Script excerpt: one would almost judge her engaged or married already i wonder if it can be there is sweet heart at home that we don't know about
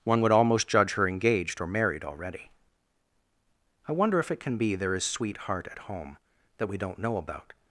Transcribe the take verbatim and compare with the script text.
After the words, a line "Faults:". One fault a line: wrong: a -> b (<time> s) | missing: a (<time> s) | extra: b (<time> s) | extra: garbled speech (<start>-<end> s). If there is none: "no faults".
one would almost judge her engaged or married already i wonder if it can be there is sweet heart at home that we don't know about
Faults:
no faults